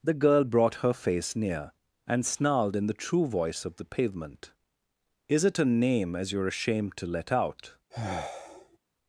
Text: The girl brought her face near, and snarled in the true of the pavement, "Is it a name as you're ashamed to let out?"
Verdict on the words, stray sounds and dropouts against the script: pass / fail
fail